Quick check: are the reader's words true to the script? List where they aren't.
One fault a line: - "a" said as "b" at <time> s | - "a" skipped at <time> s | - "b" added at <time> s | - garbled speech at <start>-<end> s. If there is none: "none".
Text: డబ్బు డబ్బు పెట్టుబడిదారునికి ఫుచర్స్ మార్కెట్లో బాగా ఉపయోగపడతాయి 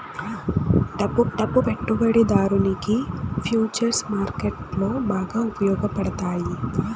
none